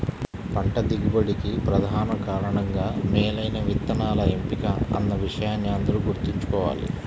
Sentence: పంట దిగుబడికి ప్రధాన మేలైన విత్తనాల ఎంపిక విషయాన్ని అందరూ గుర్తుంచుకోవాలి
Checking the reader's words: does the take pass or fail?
fail